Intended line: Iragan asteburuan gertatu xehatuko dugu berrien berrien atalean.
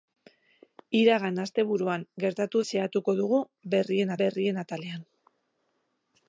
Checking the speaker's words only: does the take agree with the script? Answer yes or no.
yes